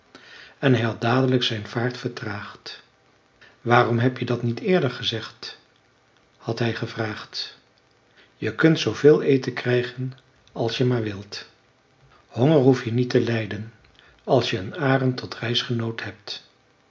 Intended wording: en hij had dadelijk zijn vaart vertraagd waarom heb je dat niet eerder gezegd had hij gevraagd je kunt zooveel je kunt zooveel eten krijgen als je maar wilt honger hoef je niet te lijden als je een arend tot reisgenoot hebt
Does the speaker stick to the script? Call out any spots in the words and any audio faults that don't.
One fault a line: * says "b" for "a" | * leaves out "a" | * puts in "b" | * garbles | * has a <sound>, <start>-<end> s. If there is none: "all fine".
* leaves out "je kunt zooveel"